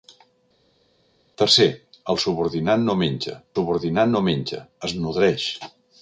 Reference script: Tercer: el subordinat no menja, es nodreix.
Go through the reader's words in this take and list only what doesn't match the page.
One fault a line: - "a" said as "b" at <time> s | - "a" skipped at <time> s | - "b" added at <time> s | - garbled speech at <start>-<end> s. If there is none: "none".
- "subordinat no menja" added at 3.5 s